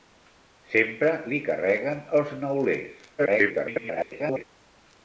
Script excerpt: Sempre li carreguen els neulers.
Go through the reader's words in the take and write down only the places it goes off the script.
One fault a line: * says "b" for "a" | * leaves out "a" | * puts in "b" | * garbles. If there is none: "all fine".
* garbles